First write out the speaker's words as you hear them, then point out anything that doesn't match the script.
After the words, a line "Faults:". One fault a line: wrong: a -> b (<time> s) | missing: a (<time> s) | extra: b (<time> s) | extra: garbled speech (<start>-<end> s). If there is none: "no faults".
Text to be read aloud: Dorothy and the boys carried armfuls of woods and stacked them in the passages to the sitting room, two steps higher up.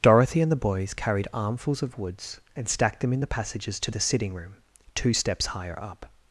Dorothy and the boys carried armfuls of woods and stacked them in the passages to the sitting room, two steps higher up.
Faults:
no faults